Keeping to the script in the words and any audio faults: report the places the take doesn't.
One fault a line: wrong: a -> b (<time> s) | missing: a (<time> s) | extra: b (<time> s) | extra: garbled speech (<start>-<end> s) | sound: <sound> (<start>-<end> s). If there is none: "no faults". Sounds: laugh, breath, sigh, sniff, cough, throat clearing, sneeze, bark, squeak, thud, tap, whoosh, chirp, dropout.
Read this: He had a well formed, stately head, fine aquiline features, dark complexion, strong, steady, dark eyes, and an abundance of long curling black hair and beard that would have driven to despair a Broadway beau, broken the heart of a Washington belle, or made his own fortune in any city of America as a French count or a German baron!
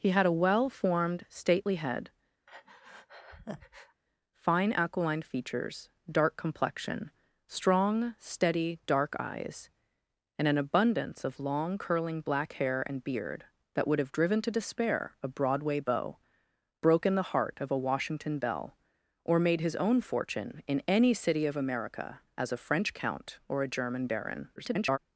sound: breath (2.5-4.0 s)
extra: garbled speech (24.6-25.0 s)